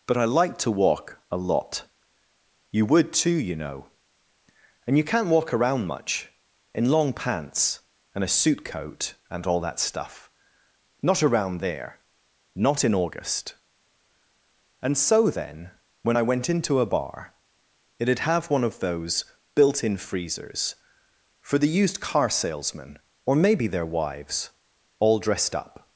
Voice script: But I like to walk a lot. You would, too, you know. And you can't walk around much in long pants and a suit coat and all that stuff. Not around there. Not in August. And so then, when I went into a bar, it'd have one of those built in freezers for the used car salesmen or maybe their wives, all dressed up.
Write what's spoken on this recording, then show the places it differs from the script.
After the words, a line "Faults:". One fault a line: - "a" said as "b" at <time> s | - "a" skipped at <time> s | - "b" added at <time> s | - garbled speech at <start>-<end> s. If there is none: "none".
But I like to walk a lot. You would, too, you know. And you can't walk around much in long pants and a suit coat and all that stuff. Not around there. Not in August. And so then, when I went into a bar, it'd have one of those built in freezers for the used car salesmen or maybe their wives, all dressed up.
Faults:
none